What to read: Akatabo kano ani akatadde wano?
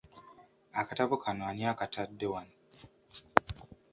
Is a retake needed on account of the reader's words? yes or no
no